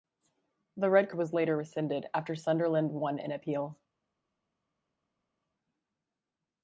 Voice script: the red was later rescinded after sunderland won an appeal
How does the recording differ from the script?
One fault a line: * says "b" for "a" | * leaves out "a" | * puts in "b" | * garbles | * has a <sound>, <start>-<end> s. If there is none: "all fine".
all fine